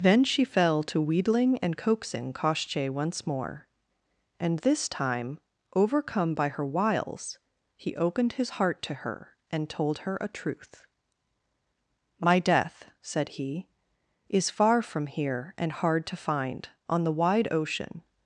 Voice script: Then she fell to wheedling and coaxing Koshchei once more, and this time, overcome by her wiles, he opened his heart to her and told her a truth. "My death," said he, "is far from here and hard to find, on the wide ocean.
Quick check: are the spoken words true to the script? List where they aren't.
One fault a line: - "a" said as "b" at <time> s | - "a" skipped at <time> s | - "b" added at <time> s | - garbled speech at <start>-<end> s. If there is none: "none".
none